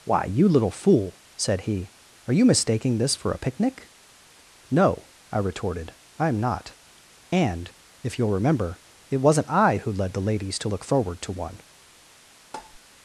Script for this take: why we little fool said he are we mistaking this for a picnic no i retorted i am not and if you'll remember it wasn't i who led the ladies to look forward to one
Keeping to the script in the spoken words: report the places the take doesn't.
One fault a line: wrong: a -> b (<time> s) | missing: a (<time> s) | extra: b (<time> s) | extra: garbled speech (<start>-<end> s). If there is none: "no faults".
wrong: we -> you (0.2 s)
wrong: we -> you (2.3 s)